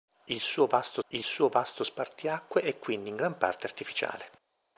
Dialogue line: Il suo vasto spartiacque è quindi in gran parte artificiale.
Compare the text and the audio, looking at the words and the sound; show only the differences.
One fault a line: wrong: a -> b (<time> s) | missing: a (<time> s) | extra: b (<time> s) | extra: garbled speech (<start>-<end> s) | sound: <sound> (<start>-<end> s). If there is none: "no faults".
extra: il suo vasto (1.1 s)